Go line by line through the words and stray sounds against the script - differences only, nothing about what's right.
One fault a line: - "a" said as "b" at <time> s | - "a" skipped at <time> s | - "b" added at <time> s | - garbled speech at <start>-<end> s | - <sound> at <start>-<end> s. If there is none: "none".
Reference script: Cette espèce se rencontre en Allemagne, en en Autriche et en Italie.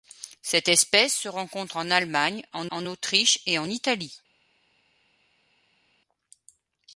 none